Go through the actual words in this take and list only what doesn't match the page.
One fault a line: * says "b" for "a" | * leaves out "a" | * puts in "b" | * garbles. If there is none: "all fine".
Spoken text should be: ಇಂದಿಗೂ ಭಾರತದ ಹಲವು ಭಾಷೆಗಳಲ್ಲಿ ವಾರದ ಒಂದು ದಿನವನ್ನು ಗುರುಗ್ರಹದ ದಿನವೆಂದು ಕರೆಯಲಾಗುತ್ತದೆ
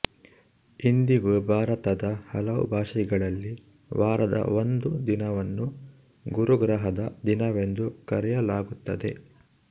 all fine